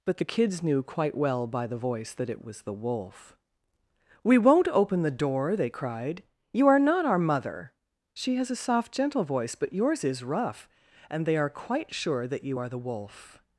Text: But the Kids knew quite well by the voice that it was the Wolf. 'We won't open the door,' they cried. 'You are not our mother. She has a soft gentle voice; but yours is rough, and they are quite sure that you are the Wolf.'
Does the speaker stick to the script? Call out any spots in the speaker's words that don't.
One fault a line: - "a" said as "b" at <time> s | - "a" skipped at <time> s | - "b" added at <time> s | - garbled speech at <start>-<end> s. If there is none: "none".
none